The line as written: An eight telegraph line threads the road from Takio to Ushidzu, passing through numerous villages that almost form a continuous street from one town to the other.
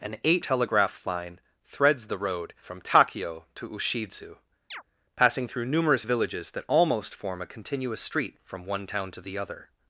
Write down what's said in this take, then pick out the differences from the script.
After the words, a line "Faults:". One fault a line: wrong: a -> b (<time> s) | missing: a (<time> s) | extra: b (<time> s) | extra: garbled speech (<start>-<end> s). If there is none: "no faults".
An eight telegraph line threads the road from Takio to Ushidzu, passing through numerous villages that almost form a continuous street from one town to the other.
Faults:
no faults